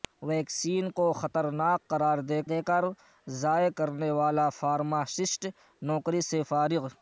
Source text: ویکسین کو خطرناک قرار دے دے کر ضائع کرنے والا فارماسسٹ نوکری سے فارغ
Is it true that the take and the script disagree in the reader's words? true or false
false